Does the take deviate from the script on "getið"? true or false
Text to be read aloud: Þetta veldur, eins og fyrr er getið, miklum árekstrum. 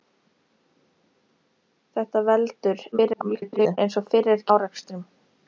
true